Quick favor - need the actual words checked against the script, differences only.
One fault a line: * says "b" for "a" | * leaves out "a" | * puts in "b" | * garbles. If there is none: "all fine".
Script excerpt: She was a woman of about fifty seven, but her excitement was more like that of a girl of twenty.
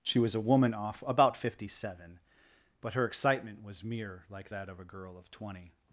* says "off" for "of"
* says "mere" for "more"